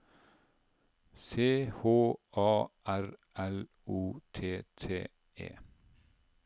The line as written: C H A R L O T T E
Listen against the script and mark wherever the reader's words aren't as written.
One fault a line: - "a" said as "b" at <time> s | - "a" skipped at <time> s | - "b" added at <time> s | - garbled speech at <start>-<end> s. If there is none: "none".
none